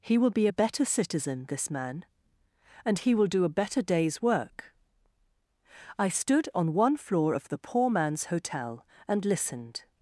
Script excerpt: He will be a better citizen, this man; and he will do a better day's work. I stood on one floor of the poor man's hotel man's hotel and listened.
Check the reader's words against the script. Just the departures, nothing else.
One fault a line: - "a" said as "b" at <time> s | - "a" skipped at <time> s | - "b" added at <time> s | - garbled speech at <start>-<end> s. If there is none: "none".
- "man's hotel" skipped at 8.9 s